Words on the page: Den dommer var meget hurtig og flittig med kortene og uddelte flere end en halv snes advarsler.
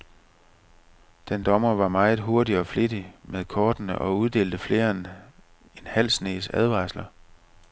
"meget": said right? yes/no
yes